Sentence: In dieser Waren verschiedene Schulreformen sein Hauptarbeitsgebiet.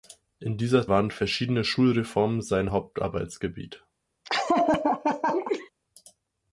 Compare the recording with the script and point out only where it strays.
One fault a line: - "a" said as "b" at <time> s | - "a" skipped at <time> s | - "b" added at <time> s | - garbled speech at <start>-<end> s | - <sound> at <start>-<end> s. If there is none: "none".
- laugh at 4.2-5.7 s